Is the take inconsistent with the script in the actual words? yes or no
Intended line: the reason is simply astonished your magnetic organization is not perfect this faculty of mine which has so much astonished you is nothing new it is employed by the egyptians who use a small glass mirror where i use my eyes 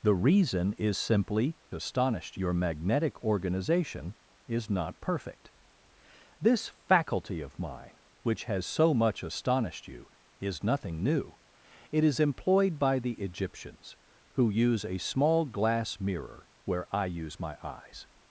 no